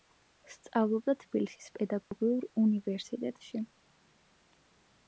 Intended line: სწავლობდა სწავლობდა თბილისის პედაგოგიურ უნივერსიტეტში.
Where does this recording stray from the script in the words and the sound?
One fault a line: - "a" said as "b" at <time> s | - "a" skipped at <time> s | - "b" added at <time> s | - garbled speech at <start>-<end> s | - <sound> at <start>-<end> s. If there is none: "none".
- "სწავლობდა" skipped at 1.1 s
- dropout at 2.0-2.1 s